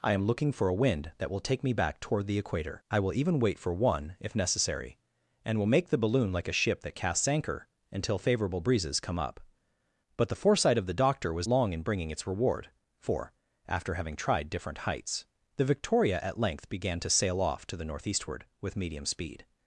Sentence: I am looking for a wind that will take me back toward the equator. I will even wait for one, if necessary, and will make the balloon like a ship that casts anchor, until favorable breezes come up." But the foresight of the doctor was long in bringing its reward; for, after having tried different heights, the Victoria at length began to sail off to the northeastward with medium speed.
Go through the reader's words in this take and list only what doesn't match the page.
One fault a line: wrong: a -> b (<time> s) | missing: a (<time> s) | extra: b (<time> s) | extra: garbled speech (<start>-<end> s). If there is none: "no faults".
no faults